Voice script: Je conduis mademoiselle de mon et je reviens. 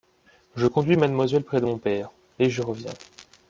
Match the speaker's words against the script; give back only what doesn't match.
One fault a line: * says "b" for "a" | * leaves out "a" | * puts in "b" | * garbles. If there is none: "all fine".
* puts in "près"
* puts in "père"